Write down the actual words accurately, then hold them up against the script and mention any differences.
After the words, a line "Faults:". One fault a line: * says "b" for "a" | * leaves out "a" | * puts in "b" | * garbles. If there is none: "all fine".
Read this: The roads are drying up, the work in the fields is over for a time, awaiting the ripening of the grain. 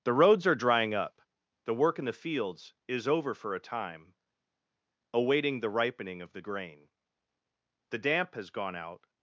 The roads are drying up, the work in the fields is over for a time, awaiting the ripening of the grain. The damp has gone out
Faults:
* puts in "The damp has gone out"